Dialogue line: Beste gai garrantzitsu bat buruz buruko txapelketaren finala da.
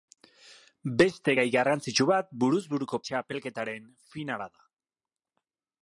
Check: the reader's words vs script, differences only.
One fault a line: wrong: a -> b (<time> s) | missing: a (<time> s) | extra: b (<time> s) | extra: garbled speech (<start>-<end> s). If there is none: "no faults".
no faults